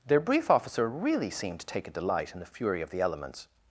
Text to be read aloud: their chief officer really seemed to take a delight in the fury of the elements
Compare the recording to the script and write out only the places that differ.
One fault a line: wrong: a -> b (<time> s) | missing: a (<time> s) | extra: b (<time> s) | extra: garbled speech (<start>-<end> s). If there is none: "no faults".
wrong: chief -> brief (0.2 s)